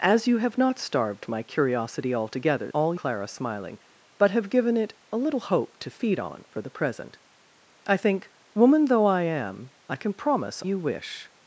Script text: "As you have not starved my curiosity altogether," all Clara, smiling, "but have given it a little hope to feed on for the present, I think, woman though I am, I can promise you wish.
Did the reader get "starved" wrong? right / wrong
right